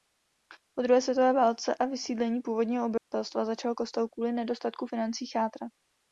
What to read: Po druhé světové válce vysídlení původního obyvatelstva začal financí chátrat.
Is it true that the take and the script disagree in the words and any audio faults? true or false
true